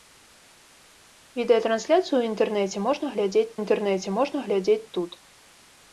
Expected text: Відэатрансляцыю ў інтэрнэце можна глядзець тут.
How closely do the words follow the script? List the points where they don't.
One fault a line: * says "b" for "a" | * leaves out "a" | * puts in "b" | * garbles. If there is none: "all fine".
* puts in "інтэрнэце можна глядзець"